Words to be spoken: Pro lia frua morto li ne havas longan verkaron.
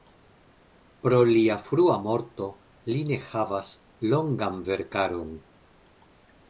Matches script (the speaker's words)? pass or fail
pass